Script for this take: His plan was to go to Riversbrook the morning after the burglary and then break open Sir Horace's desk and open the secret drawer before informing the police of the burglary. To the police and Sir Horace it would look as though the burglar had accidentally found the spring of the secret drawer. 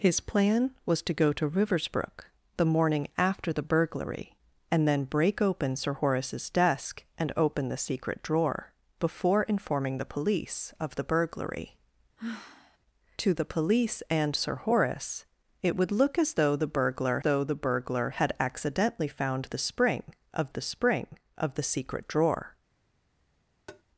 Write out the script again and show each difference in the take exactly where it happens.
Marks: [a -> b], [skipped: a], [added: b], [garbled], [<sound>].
His plan was to go to Riversbrook the morning after the burglary and then break open Sir Horace's desk and open the secret drawer before informing the police of the burglary. [sigh] To the police and Sir Horace it would look as though the burglar [added: though the burglar] had accidentally found the spring of the [added: spring of the] secret drawer. [tap]